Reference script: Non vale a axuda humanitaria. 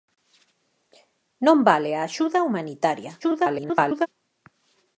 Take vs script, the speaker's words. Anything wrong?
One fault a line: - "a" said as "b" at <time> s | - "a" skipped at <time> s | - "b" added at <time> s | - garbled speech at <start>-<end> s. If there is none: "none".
- garbled speech at 3.2-4.1 s